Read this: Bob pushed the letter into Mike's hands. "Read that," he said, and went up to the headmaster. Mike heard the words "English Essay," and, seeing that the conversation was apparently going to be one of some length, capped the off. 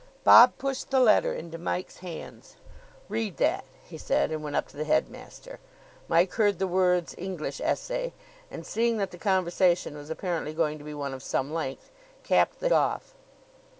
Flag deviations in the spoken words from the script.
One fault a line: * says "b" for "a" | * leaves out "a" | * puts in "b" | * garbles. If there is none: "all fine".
all fine